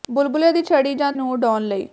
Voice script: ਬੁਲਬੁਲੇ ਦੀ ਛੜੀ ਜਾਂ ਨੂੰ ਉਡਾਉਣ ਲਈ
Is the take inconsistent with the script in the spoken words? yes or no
no